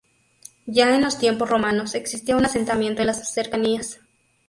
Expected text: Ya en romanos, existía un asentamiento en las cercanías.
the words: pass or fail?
fail